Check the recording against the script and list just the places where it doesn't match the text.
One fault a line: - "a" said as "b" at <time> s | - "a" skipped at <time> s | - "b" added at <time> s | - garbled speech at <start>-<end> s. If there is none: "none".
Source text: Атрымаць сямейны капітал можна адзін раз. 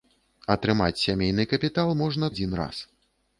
none